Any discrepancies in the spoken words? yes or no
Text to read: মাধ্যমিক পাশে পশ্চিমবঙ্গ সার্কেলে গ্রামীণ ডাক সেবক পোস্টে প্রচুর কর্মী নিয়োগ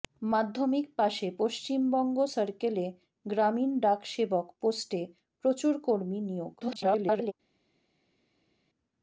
yes